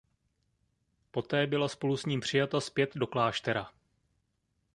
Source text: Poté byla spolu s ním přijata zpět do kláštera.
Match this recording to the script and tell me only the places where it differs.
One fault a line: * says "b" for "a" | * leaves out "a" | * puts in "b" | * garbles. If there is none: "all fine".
all fine